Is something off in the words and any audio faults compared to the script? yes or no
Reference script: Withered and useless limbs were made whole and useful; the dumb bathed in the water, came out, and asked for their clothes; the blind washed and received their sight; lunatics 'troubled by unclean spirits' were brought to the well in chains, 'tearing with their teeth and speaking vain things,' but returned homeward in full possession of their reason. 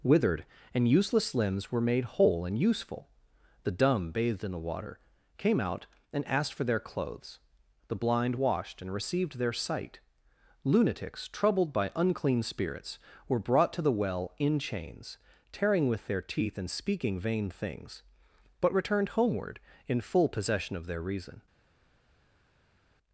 no